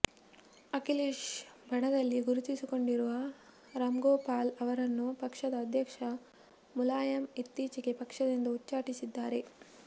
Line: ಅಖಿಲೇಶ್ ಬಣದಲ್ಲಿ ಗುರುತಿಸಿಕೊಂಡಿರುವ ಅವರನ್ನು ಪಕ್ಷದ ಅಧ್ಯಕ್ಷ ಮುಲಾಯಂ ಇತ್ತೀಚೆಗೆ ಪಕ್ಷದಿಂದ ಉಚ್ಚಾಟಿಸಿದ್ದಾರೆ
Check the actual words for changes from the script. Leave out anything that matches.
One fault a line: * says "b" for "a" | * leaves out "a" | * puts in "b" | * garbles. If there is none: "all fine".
* puts in "ರಾಮ್ಗೋಪಾಲ್"